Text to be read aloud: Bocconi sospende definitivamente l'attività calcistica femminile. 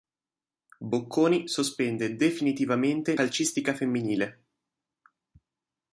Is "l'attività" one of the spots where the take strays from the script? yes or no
yes